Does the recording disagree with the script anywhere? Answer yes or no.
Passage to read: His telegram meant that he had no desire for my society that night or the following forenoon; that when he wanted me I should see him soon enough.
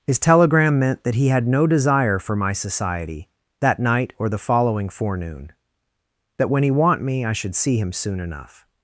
yes